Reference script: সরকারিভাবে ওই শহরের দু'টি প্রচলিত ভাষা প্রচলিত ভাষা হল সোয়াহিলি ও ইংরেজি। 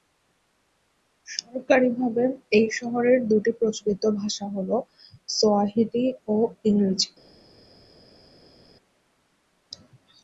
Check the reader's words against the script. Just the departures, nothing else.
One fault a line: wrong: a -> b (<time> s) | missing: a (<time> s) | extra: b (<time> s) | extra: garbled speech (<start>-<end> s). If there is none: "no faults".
wrong: ওই -> এই (2.6 s)
missing: প্রচলিত ভাষা (4.5 s)